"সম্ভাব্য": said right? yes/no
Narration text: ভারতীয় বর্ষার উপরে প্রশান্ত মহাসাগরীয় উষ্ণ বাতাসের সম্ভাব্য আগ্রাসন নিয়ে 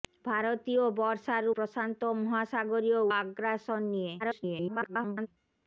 no